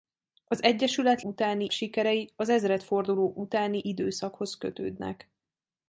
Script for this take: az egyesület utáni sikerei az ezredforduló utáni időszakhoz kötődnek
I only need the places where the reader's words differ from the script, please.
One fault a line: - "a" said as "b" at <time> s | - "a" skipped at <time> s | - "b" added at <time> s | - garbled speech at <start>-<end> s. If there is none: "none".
none